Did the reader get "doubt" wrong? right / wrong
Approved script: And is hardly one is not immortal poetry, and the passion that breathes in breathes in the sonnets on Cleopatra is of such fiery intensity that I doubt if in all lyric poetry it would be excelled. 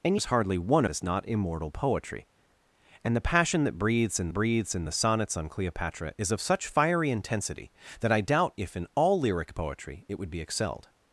right